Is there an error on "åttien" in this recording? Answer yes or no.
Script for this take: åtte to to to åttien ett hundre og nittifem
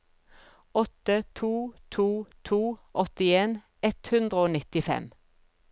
no